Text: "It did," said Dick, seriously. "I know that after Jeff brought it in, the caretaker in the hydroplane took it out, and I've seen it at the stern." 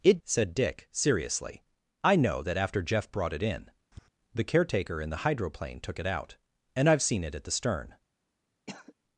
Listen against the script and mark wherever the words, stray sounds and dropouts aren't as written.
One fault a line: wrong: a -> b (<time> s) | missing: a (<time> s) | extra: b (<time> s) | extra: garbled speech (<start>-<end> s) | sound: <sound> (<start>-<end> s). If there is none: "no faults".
missing: did (0.2 s)
sound: tap (3.9-4.1 s)
sound: cough (8.7-8.9 s)